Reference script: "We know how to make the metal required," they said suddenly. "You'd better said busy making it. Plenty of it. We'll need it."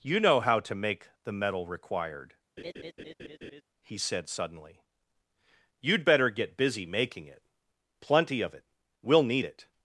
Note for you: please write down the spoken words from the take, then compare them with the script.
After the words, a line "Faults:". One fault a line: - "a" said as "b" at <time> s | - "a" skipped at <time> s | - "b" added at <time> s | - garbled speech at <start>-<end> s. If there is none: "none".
"You know how to make the metal required," he said suddenly. "You'd better get busy making it. Plenty of it. We'll need it."
Faults:
- "We" said as "You" at 0.0 s
- "they" said as "he" at 3.8 s
- "said" said as "get" at 6.3 s